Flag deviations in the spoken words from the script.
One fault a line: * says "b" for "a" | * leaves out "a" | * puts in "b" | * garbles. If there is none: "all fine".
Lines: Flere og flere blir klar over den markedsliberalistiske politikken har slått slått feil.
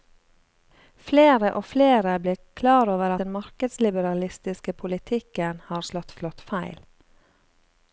all fine